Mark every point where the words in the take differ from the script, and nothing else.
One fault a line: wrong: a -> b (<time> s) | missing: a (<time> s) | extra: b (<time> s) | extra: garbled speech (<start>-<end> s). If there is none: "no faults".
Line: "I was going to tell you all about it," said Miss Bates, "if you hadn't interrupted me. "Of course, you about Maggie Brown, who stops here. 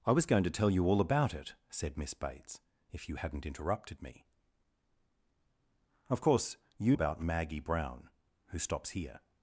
no faults